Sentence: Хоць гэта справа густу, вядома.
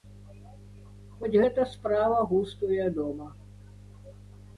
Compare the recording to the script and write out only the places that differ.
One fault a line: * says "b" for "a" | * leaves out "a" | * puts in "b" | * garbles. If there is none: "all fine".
all fine